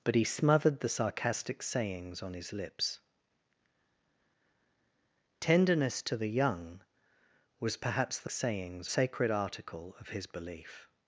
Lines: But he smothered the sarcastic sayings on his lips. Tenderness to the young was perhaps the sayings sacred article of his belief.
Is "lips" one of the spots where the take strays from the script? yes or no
no